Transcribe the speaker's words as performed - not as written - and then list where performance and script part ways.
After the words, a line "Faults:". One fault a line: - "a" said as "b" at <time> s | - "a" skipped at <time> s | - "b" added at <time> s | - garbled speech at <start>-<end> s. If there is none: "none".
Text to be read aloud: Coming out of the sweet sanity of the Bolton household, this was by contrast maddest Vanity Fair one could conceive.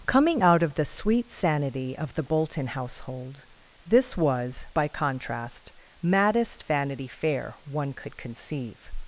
Coming out of the sweet sanity of the Bolton household, this was by contrast maddest Vanity Fair one could conceive.
Faults:
none